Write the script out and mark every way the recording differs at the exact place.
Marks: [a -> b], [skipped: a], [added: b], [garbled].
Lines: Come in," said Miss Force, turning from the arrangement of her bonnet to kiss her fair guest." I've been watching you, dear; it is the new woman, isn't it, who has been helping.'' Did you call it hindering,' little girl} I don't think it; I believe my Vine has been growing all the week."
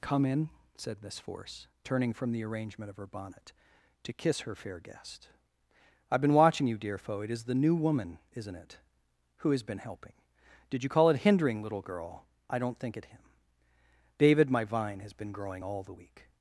Come in," said Miss Force, turning from the arrangement of her bonnet to kiss her fair guest." I've been watching you, dear; [added: foe] it is the new woman, isn't it, who has been helping.'' Did you call it hindering,' little girl} I don't think it; [I believe -> him david] my Vine has been growing all the week."